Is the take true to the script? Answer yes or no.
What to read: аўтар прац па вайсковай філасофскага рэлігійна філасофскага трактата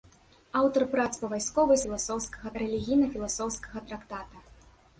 yes